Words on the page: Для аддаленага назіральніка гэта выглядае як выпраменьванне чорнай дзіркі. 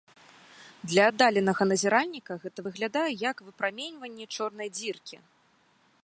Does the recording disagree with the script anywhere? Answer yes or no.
no